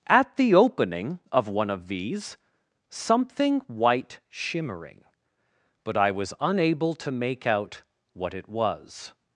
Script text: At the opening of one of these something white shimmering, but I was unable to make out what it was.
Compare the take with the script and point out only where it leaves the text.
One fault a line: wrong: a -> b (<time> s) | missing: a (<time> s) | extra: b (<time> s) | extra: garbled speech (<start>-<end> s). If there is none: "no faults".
no faults